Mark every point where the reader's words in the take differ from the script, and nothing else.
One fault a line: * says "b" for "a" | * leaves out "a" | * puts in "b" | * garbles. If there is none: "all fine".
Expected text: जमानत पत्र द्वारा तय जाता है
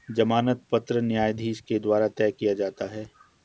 * puts in "न्यायाधीश के"
* puts in "किया"